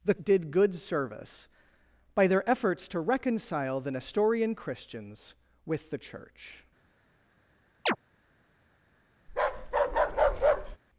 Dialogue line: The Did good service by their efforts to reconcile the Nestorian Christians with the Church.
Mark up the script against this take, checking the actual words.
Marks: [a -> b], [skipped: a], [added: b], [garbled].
The Did good service by their efforts to reconcile the Nestorian Christians with the Church.